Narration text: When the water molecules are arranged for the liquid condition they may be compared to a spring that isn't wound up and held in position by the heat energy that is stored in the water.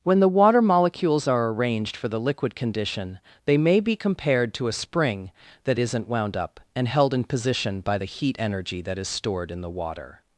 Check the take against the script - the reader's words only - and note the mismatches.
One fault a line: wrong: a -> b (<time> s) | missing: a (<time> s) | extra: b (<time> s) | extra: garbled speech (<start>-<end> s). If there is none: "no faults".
no faults